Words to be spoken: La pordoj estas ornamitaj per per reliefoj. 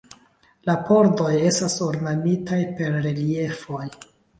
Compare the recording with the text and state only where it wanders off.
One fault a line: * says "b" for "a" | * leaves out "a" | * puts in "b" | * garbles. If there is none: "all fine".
* leaves out "per"